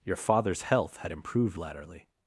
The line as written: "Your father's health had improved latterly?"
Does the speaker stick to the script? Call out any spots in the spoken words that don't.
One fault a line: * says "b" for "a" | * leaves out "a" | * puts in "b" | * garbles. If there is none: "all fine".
all fine